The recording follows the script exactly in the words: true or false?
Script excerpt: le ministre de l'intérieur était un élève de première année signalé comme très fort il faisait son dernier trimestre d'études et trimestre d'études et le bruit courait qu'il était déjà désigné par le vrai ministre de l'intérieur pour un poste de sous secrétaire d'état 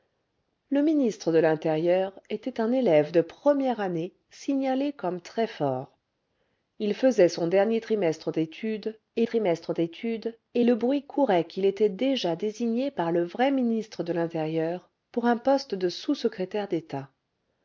true